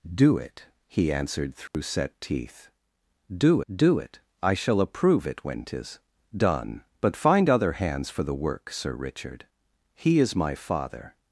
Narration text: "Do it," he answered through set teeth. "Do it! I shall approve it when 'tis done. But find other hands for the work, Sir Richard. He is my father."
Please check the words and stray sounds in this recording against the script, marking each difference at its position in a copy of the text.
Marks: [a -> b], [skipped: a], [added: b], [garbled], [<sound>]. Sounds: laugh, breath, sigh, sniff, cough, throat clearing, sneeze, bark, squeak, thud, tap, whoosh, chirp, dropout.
"Do it," he answered through [dropout] set teeth. "Do [added: do] it! I shall approve it when 'tis done. But find other hands for the work, Sir Richard. He is my father."